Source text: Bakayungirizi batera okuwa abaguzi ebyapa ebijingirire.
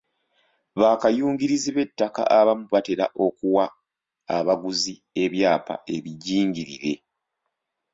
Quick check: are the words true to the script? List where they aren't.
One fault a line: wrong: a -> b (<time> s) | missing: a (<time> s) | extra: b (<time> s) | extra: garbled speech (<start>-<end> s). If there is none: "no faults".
extra: b'ettaka abamu (1.8 s)